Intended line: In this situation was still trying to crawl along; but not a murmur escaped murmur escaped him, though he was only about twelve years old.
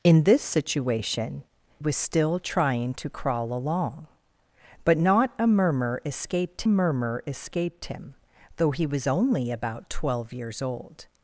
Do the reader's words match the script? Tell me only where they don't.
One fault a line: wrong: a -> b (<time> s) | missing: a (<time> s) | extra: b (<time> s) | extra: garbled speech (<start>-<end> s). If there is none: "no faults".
no faults